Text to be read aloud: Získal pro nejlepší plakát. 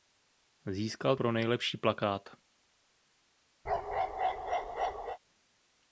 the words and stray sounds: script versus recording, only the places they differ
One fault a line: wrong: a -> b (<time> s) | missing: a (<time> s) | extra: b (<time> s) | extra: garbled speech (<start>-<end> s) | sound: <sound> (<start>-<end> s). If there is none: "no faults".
sound: bark (3.6-5.2 s)